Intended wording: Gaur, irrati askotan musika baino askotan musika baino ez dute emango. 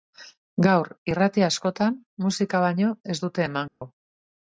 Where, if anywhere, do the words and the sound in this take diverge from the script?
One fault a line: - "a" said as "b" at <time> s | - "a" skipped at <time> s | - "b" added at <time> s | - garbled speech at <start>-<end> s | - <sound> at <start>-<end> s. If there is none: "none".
- "askotan musika baino" skipped at 2.9 s
- dropout at 3.7-3.8 s